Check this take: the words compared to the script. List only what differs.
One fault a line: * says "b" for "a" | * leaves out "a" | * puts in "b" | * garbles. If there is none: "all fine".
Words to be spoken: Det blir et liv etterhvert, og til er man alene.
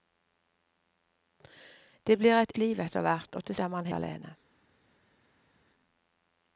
all fine